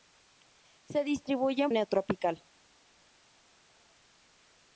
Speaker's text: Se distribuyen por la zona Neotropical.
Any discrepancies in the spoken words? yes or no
yes